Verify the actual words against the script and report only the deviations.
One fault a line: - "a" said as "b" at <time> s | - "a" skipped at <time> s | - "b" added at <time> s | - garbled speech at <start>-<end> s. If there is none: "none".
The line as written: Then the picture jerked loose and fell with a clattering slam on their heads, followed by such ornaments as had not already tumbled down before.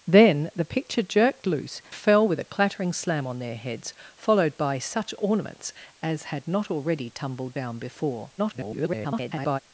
- "and" skipped at 1.8 s
- garbled speech at 8.4-9.6 s